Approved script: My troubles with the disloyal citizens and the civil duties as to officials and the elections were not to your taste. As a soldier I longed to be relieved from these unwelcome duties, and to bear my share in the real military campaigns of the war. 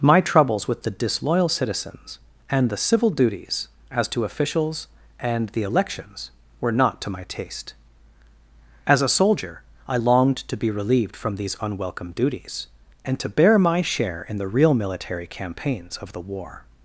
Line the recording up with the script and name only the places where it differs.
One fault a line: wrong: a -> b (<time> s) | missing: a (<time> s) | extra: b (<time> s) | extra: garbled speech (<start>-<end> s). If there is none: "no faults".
wrong: your -> my (7.1 s)